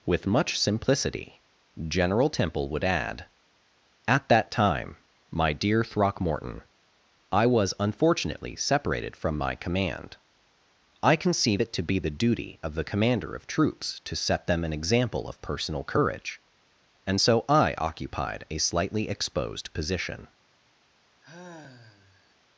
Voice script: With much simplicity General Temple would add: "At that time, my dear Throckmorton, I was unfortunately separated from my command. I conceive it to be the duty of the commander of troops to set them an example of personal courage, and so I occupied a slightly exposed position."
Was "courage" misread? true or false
false